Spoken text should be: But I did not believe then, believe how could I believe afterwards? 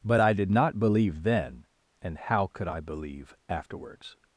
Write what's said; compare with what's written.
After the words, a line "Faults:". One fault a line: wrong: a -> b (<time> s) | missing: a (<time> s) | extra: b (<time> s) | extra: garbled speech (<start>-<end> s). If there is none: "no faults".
But I did not believe then, and how could I believe afterwards?
Faults:
wrong: believe -> and (2.0 s)